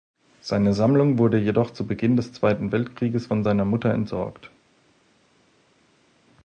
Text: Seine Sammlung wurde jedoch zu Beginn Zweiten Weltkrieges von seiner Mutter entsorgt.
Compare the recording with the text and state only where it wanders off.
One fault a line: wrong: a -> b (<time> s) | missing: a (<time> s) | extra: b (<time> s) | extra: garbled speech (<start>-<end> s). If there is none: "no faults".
extra: des (2.1 s)